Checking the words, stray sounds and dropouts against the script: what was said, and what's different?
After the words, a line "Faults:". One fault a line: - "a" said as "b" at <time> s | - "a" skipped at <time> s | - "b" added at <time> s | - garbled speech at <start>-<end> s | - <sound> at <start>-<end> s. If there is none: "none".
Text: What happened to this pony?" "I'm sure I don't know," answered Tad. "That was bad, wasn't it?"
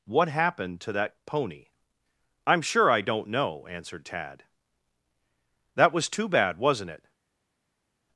What happened to that pony?" "I'm sure I don't know," answered Tad. "That was too bad, wasn't it?"
Faults:
- "this" said as "that" at 0.9 s
- "too" added at 6.1 s